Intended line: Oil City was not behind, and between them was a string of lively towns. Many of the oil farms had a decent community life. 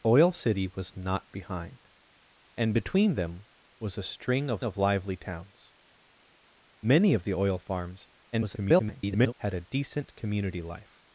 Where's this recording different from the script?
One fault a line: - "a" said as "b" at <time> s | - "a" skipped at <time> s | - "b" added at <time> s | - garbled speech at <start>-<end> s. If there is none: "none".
- "of" added at 4.6 s
- garbled speech at 8.3-9.4 s